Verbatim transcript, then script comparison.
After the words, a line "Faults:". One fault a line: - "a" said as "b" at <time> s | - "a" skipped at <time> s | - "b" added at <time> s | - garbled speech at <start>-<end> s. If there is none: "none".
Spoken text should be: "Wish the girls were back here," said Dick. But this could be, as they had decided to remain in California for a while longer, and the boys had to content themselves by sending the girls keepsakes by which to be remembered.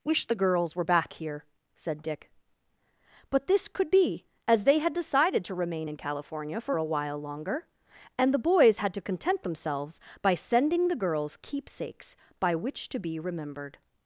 "Wish the girls were back here," said Dick. But this could be, as they had decided to remain in California for a while longer, and the boys had to content themselves by sending the girls keepsakes by which to be remembered.
Faults:
none